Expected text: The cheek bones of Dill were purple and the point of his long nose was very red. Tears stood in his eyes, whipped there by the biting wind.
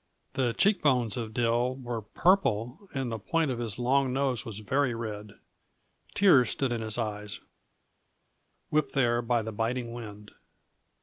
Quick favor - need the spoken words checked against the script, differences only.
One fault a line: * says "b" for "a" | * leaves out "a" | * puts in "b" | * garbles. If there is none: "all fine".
all fine